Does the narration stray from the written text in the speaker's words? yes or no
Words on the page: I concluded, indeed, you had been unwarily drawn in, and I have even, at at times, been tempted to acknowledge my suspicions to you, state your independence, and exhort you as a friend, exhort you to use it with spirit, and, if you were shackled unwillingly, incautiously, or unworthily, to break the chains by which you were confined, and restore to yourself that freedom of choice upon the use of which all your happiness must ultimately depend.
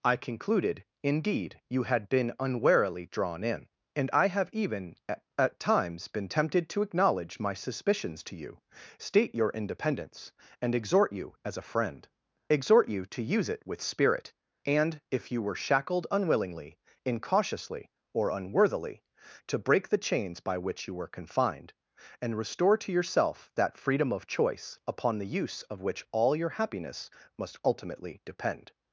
no